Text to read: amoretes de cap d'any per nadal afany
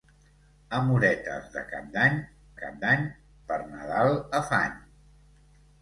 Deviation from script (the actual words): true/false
true